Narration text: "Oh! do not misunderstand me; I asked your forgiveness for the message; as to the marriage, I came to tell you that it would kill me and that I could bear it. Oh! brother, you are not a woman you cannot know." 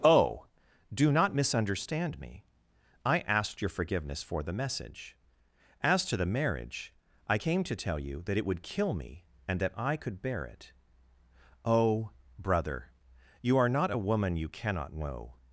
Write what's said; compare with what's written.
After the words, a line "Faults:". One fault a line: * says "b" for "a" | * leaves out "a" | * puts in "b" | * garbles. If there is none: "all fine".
"Oh! do not misunderstand me; I asked your forgiveness for the message; as to the marriage, I came to tell you that it would kill me and that I could bear it. Oh! brother, you are not a woman you cannot know."
Faults:
all fine